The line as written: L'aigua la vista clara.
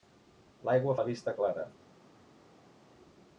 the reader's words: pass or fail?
pass